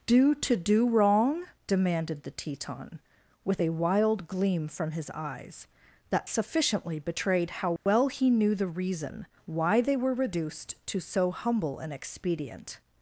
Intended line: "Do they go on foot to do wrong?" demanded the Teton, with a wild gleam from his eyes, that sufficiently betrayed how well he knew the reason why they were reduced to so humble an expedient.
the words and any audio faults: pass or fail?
fail